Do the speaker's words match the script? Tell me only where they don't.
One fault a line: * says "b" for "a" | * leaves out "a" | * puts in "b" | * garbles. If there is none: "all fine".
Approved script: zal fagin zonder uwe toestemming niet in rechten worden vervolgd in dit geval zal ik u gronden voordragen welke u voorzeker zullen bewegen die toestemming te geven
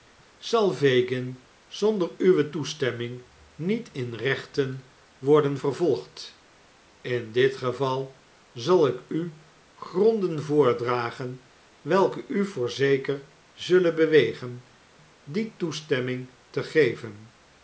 all fine